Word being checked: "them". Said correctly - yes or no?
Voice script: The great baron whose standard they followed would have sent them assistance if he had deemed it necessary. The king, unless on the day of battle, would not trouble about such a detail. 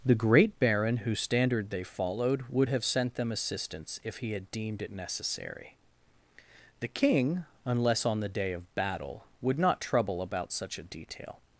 yes